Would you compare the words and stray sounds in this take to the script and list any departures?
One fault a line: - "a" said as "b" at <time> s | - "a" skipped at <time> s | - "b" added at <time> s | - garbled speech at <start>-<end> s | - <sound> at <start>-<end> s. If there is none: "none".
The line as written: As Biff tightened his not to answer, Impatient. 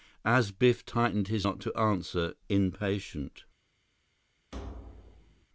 - thud at 4.5-5.5 s